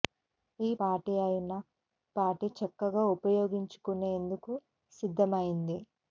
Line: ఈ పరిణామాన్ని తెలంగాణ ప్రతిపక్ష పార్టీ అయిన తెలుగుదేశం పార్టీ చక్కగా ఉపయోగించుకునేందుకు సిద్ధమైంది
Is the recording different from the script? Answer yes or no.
yes